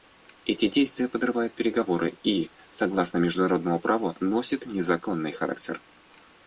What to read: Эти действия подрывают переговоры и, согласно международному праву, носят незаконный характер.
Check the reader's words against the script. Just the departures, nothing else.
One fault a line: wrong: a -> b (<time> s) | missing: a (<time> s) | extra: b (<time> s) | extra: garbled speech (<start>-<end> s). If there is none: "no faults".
no faults